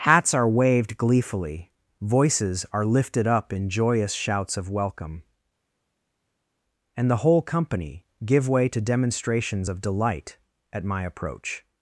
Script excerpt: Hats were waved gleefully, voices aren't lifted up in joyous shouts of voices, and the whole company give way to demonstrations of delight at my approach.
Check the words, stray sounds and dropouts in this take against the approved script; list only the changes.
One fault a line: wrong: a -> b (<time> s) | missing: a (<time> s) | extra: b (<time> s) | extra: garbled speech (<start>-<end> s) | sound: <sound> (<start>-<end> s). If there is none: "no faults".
wrong: were -> are (0.3 s)
wrong: aren't -> are (2.7 s)
wrong: voices -> welcome (4.7 s)